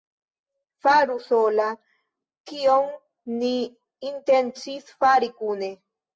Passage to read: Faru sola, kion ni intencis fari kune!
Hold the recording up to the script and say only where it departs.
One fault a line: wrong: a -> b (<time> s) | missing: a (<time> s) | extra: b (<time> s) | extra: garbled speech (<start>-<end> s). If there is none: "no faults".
no faults